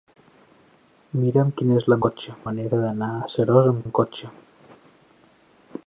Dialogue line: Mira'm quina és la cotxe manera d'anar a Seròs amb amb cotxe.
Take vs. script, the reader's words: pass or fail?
pass